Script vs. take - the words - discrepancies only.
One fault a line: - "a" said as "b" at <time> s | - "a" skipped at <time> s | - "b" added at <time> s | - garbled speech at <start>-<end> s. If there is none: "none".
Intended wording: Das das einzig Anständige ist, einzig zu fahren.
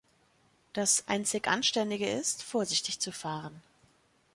- "das" skipped at 1.1 s
- "einzig" said as "vorsichtig" at 2.4 s